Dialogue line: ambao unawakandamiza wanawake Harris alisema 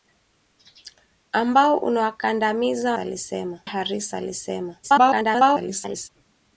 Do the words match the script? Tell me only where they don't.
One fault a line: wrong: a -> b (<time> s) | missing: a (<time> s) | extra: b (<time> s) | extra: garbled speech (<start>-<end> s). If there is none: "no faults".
wrong: wanawake -> alisema (3.0 s)
extra: garbled speech (4.8-6.1 s)